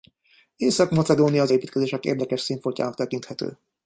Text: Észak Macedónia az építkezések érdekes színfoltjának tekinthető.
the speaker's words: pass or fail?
pass